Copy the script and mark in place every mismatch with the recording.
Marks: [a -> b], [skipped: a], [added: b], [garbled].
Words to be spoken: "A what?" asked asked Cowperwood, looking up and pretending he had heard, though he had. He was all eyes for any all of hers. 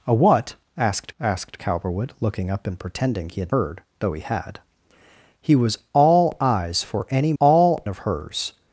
"A what?" asked asked Cowperwood, looking up and pretending he had heard, though he had. He was all eyes for any all of hers.